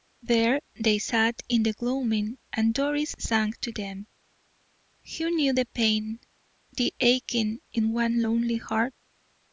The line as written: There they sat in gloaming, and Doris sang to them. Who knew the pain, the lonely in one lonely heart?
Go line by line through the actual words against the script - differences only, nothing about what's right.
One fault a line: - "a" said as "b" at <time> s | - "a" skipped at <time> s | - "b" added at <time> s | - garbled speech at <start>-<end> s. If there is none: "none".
- "the" added at 1.6 s
- "lonely" said as "aching" at 7.0 s